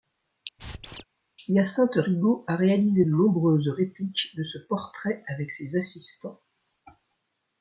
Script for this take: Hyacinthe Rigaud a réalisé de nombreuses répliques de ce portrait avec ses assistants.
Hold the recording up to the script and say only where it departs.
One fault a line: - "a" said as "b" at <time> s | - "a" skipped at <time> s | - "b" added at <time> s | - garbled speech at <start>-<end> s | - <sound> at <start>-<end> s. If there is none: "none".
- squeak at 0.6-1.0 s